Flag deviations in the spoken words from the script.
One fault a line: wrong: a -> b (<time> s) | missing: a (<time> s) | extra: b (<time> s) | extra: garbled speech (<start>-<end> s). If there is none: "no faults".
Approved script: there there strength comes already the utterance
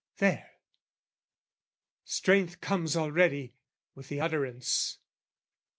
missing: there (0.5 s)
extra: with (3.9 s)